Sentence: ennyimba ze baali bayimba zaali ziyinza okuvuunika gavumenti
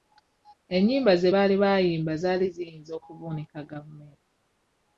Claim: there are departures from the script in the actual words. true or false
false